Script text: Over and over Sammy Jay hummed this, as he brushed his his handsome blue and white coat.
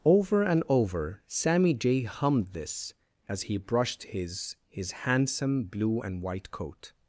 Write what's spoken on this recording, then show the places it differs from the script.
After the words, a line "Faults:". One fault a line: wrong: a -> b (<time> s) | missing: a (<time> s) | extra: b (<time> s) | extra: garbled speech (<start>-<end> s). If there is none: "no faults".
Over and over Sammy Jay hummed this, as he brushed his his handsome blue and white coat.
Faults:
no faults